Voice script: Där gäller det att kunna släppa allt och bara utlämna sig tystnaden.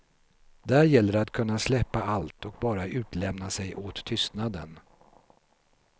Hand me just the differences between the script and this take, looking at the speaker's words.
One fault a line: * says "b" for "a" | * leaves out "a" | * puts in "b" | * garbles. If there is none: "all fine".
* puts in "åt"